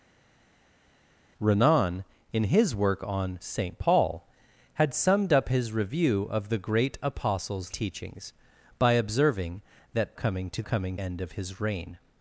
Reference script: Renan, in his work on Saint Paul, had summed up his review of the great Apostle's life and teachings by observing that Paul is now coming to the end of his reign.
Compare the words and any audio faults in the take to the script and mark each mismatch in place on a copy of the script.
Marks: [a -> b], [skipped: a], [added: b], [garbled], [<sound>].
Renan, in his work on Saint Paul, had summed up his review of the great Apostle's [skipped: life and] teachings by observing that [skipped: Paul is now] coming to [the -> coming] end of his reign.